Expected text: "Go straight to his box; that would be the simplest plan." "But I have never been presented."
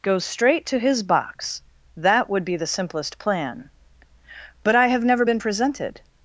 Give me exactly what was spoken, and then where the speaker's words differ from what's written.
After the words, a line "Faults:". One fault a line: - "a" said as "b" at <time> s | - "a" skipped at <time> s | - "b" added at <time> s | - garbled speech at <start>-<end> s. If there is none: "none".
"Go straight to his box; that would be the simplest plan." "But I have never been presented."
Faults:
none